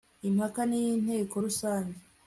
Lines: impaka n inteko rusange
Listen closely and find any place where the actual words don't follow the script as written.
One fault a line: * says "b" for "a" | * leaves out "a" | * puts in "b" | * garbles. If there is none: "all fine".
all fine